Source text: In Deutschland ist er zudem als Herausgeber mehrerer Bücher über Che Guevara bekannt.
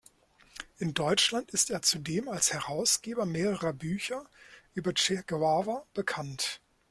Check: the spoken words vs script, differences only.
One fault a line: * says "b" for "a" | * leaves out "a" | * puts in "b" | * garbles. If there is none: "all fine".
all fine